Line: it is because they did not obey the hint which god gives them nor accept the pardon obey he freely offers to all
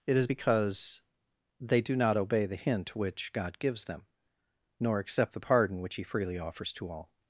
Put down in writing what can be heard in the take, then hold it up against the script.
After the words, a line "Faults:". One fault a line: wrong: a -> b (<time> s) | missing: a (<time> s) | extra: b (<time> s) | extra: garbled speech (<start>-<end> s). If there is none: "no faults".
it is because they do not obey the hint which god gives them nor accept the pardon which he freely offers to all
Faults:
wrong: did -> do (1.8 s)
wrong: obey -> which (5.8 s)